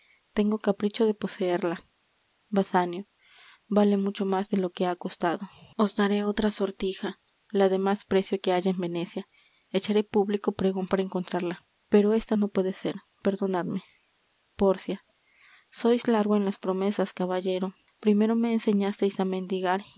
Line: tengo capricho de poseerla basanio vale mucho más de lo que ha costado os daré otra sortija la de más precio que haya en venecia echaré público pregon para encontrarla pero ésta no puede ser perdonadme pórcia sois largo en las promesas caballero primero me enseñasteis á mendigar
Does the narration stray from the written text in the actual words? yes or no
no